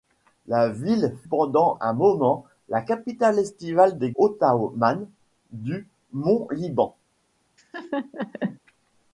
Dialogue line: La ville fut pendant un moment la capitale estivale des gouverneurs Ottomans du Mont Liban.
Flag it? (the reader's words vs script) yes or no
yes